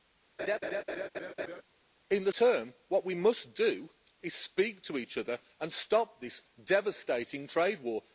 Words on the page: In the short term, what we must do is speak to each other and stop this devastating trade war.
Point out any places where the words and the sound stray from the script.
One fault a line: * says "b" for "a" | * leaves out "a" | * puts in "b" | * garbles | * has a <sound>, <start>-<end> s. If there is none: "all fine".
* has a laugh, 0.4-1.6 s
* leaves out "short"